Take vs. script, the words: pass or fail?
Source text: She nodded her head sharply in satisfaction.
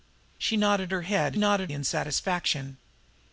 fail